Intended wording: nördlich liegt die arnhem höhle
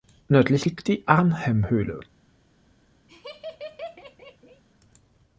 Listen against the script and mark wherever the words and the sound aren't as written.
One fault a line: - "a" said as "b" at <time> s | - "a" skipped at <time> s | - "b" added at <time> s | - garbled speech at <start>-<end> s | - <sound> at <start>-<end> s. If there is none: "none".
- laugh at 3.1-4.6 s